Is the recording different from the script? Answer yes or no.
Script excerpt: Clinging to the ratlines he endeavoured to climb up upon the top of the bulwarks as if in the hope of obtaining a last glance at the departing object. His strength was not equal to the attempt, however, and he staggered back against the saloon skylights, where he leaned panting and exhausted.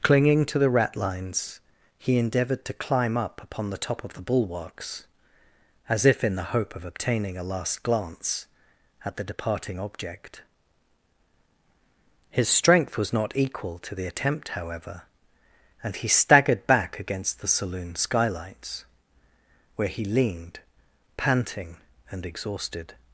no